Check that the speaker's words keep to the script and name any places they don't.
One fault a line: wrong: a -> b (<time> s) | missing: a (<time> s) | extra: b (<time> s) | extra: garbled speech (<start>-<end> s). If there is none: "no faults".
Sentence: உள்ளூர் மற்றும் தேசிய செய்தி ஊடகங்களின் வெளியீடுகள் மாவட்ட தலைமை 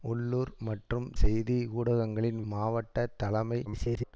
missing: தேசிய (1.1 s)
missing: வெளியீடுகள் (2.4 s)
extra: garbled speech (3.7-4.1 s)